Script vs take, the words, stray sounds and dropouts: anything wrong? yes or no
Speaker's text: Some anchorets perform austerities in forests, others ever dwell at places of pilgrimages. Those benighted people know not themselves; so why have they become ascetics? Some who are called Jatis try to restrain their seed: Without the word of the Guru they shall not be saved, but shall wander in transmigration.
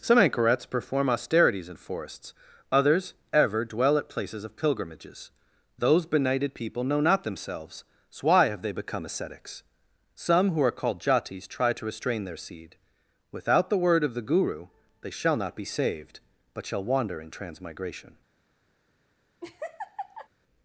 yes